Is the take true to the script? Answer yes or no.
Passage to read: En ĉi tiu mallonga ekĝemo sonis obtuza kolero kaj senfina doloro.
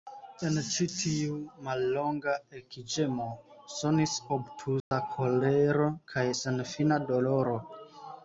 yes